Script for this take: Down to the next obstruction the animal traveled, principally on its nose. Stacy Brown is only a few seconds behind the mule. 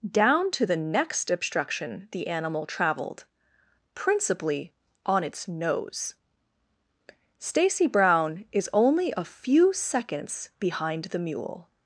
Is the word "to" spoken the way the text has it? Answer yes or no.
yes